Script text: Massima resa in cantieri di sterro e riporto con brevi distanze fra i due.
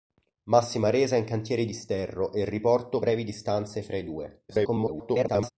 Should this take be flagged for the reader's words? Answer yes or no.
yes